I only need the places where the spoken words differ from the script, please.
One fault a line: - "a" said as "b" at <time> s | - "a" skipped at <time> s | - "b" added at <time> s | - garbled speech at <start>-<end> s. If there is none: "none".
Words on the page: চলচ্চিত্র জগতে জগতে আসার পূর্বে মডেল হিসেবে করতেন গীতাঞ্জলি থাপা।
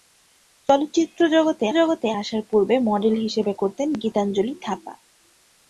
none